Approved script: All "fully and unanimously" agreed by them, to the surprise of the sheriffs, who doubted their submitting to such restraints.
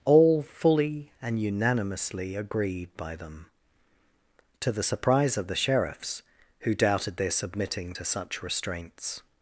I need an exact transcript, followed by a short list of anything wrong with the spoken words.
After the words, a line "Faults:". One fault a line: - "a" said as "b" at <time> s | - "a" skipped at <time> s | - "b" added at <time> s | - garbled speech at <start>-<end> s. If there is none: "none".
All "fully and unanimously" agreed by them, to the surprise of the sheriffs, who doubted their submitting to such restraints.
Faults:
none